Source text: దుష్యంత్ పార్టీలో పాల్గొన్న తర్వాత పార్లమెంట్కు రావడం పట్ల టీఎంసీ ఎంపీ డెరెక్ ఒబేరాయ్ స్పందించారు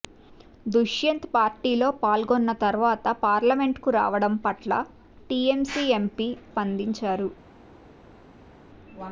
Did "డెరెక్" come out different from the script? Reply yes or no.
yes